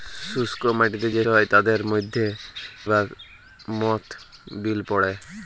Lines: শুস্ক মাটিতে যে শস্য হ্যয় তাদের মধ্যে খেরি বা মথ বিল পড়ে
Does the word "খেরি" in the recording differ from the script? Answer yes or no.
yes